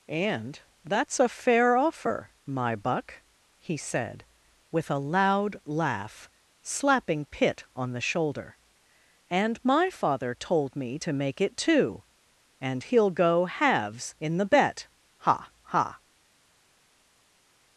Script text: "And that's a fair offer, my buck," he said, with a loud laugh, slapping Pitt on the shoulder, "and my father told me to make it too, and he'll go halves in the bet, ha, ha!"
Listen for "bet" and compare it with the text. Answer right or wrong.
right